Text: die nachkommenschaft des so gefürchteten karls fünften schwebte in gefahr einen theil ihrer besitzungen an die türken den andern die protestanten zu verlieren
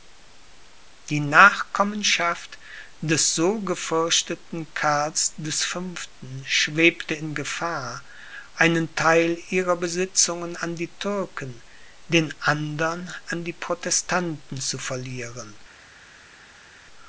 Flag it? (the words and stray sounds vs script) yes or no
yes